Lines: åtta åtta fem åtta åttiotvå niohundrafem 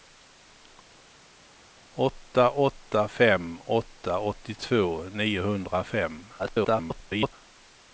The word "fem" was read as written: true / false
true